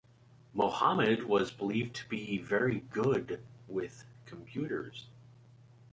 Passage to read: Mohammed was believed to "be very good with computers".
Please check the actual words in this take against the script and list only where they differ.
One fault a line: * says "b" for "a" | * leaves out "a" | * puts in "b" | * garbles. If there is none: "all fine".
all fine